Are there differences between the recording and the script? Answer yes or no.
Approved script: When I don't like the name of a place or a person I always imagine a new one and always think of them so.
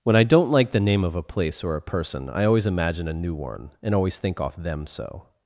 yes